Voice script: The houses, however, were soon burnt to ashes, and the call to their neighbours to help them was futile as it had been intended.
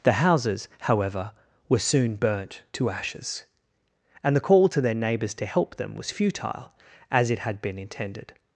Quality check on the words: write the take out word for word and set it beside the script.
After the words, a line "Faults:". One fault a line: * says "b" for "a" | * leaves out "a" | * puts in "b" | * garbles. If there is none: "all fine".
The houses, however, were soon burnt to ashes, and the call to their neighbours to help them was futile as it had been intended.
Faults:
all fine